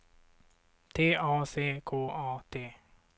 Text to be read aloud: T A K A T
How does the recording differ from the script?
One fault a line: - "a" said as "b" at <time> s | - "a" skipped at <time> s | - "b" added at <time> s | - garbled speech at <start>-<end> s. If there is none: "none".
- "C" added at 1.4 s